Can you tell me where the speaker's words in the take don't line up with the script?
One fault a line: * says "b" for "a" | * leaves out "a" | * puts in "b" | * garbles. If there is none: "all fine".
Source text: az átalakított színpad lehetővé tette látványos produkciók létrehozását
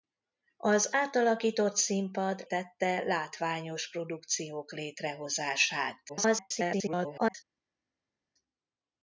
* leaves out "lehetővé"
* garbles